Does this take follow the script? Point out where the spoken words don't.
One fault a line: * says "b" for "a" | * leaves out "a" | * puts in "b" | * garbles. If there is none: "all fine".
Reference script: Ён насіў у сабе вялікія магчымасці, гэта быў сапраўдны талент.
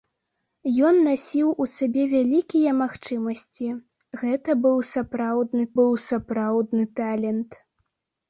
* puts in "быў сапраўдны"